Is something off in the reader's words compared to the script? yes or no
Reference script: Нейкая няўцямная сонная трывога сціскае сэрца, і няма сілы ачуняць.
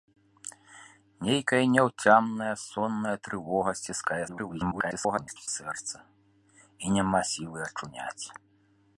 yes